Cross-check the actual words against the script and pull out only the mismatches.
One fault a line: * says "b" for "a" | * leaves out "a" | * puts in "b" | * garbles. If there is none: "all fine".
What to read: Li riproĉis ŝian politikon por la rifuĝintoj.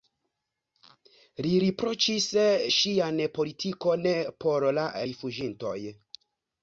all fine